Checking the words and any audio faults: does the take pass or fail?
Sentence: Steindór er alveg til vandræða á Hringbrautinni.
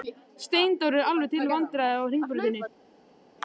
pass